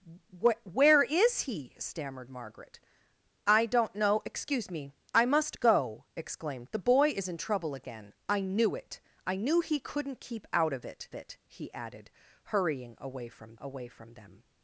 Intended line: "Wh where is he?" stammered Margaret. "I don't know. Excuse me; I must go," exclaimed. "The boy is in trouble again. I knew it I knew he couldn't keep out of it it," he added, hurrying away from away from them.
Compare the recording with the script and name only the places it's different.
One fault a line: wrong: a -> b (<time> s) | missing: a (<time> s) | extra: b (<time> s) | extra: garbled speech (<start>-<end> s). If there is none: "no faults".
no faults